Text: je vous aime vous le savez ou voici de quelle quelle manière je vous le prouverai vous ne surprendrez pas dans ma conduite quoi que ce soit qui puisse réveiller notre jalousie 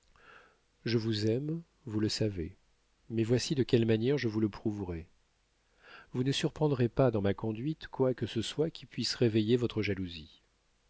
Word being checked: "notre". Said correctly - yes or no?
no